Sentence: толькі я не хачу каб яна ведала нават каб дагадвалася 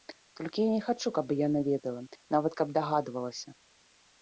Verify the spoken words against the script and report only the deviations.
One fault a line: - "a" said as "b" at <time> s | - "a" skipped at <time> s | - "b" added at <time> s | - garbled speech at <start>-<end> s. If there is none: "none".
none